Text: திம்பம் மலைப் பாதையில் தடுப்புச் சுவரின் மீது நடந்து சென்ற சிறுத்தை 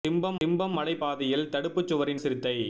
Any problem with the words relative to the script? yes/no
yes